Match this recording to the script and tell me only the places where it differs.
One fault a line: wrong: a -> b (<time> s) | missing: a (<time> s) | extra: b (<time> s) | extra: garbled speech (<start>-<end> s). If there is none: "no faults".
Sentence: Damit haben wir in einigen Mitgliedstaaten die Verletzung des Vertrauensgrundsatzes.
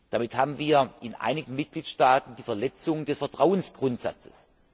no faults